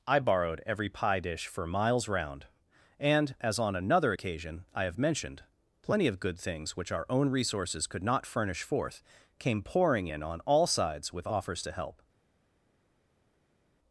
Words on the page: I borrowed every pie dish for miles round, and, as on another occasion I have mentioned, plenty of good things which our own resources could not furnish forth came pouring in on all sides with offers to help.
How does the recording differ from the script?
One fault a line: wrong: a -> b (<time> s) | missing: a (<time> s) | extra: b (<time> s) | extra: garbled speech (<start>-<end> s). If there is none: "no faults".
no faults